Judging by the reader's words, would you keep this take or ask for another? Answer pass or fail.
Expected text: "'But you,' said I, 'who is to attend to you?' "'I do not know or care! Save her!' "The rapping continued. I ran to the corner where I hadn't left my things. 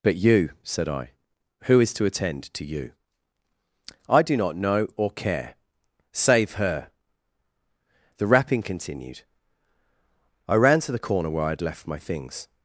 fail